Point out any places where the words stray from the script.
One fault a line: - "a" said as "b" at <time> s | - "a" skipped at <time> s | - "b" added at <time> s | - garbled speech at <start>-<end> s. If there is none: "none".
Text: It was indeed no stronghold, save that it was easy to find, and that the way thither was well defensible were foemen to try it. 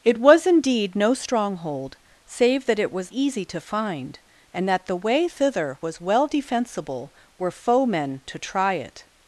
none